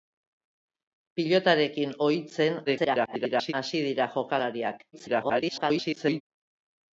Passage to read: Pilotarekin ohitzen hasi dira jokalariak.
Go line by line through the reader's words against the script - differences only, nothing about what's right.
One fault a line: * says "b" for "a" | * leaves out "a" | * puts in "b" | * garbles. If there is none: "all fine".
* garbles
* garbles